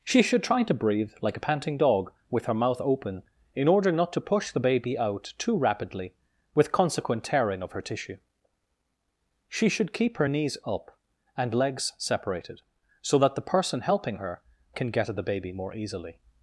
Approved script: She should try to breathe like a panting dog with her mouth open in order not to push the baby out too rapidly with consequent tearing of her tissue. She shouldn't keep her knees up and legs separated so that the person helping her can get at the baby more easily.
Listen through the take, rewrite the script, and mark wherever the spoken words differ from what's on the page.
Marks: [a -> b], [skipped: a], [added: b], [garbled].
She should try to breathe like a panting dog with her mouth open in order not to push the baby out too rapidly with consequent tearing of her tissue. She [shouldn't -> should] keep her knees up and legs separated so that the person helping her can get at the baby more easily.